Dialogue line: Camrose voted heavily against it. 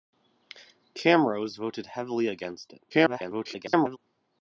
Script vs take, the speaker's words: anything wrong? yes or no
yes